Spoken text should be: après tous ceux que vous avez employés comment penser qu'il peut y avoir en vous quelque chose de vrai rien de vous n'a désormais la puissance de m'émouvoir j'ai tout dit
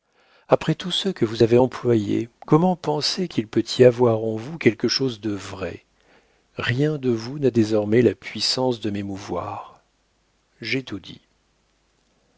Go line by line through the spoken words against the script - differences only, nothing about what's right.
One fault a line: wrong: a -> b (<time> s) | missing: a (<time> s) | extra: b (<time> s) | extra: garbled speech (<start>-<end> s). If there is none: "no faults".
no faults